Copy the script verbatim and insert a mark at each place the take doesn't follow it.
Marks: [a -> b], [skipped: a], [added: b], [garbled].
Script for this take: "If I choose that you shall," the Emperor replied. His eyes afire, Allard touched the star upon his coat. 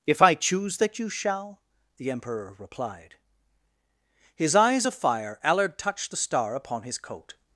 "If I choose that you shall," the Emperor replied. His eyes [afire, -> of fire] Allard touched the star upon his coat.